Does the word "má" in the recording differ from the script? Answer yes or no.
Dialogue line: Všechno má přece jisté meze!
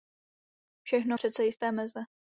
yes